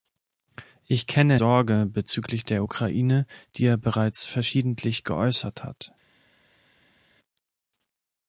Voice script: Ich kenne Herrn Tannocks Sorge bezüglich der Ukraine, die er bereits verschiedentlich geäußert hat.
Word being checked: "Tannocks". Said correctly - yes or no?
no